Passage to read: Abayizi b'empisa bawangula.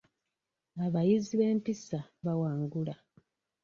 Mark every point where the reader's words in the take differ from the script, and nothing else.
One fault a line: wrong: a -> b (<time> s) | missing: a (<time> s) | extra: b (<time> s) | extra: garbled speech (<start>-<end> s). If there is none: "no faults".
no faults